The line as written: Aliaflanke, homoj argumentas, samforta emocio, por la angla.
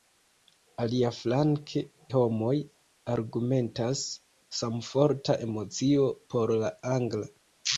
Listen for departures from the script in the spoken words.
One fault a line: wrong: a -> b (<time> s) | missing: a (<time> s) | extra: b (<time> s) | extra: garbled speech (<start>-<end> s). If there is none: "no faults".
no faults